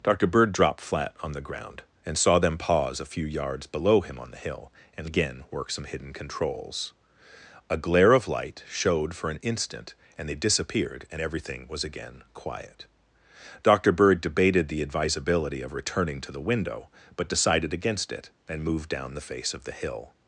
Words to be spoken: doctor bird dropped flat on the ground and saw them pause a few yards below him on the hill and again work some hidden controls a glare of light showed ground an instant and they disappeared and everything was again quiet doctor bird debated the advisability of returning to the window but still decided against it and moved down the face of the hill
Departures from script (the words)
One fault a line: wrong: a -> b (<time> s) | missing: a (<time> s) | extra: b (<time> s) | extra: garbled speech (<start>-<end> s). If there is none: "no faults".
wrong: ground -> for (9.2 s)
missing: still (17.3 s)